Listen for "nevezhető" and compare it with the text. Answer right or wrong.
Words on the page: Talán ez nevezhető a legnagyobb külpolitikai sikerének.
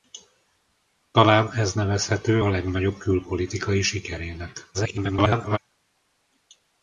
right